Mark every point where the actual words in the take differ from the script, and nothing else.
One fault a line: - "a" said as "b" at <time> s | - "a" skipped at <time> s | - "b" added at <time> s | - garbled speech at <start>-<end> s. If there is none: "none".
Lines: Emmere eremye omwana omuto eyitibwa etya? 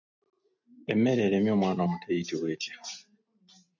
none